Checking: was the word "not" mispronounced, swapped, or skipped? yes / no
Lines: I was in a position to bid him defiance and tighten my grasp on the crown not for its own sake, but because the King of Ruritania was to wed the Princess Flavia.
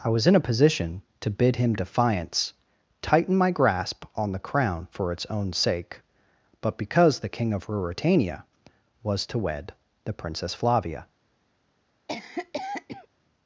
yes